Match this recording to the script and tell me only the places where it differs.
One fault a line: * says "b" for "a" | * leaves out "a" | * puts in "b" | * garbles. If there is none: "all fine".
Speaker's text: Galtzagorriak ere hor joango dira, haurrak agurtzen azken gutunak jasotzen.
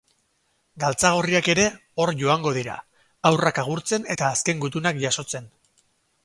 * puts in "eta"